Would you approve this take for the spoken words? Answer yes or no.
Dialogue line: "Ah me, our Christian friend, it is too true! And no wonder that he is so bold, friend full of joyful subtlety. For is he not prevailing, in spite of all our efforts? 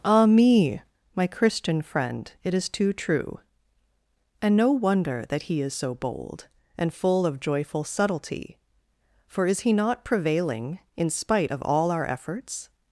no